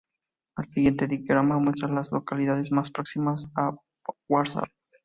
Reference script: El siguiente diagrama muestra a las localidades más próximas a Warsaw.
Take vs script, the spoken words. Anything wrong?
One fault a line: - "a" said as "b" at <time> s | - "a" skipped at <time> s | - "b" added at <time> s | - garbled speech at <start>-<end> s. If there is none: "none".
none